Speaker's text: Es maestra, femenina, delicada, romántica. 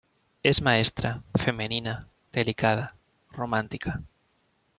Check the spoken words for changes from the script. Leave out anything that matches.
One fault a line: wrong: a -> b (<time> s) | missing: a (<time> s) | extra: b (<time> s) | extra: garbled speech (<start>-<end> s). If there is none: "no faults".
no faults